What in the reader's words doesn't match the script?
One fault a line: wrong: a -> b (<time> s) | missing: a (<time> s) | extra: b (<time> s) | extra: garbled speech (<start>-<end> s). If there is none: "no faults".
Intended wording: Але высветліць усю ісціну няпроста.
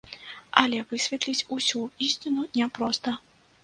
no faults